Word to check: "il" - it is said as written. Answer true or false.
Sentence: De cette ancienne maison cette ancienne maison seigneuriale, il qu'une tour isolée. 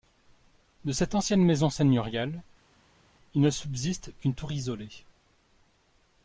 false